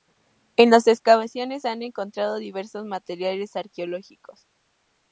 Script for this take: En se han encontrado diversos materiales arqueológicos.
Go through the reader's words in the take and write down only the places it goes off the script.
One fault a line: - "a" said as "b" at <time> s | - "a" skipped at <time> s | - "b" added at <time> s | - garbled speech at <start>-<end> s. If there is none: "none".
- "las excavaciones" added at 0.7 s